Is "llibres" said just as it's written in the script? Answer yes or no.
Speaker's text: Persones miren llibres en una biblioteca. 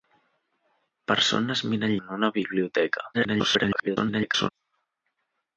no